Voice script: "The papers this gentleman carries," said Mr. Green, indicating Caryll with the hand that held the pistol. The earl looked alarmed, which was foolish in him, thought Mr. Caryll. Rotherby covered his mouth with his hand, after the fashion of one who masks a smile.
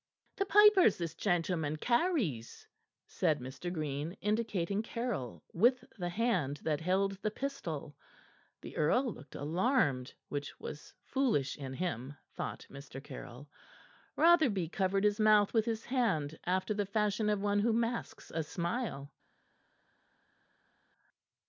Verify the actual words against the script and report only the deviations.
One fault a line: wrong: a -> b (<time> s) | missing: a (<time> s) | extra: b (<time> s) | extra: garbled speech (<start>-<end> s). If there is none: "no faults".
no faults